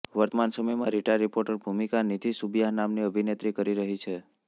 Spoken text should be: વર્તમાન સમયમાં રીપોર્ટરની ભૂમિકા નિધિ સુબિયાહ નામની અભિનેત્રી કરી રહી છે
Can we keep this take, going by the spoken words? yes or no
no